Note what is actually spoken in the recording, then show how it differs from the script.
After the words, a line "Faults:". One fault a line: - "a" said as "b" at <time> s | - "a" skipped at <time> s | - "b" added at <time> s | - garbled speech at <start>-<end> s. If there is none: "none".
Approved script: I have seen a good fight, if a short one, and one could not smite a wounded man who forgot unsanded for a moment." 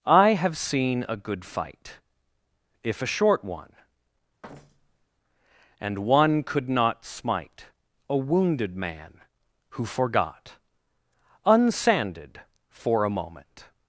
I have seen a good fight, if a short one, and one could not smite a wounded man who forgot unsanded for a moment."
Faults:
none